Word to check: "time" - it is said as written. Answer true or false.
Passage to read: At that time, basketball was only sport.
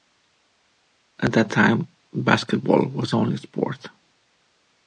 true